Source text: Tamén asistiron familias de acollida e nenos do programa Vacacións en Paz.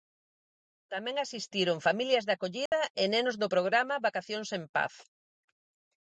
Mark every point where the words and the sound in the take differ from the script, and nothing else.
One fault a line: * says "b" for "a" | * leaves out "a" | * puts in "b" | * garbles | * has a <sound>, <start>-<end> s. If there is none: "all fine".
* has a dropout, 2.7-2.7 s